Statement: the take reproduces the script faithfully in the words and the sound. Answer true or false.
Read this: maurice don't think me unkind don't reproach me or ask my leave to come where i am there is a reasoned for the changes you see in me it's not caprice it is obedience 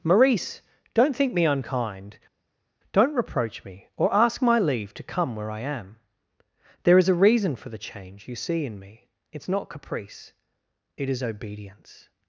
false